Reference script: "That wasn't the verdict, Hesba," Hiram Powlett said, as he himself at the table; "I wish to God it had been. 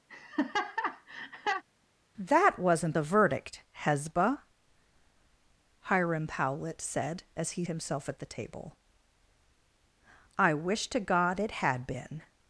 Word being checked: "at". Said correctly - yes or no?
yes